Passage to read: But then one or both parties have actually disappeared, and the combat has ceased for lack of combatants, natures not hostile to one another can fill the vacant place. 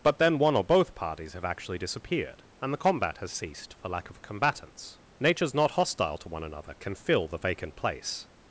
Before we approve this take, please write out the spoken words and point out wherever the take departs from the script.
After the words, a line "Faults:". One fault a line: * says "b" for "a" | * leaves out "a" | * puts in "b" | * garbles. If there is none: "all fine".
But then one or both parties have actually disappeared, and the combat has ceased for lack of combatants, natures not hostile to one another can fill the vacant place.
Faults:
all fine